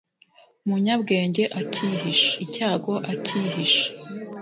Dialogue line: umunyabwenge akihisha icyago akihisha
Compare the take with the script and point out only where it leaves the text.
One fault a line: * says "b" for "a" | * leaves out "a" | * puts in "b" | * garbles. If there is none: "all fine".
all fine